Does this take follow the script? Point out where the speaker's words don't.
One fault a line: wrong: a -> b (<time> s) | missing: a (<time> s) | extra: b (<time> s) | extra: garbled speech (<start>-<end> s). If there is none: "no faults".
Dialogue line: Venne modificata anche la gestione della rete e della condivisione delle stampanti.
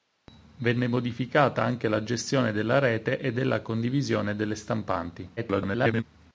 extra: garbled speech (5.4-6.0 s)